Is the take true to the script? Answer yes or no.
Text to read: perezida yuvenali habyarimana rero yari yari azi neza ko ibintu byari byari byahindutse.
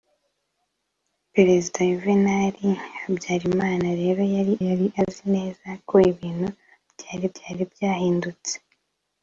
yes